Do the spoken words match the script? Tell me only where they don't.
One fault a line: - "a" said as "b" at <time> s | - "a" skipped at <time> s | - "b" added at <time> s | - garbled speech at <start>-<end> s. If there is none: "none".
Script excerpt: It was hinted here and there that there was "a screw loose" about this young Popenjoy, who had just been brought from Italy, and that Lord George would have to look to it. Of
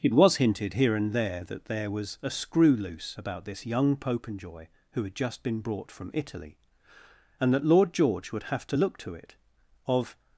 none